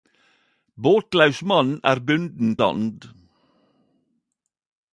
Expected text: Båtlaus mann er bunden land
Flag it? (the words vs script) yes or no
no